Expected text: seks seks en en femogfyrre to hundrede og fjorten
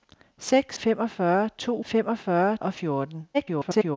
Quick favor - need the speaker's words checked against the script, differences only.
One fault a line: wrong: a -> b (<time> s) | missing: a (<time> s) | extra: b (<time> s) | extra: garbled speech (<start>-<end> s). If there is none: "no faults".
missing: seks en en (0.8 s)
wrong: hundrede -> femogfyrre (1.8 s)
extra: garbled speech (3.3-4.0 s)